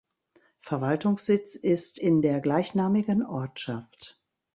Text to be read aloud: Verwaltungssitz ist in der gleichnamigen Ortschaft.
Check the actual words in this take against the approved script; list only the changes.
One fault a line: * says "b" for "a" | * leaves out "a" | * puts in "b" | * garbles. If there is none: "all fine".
all fine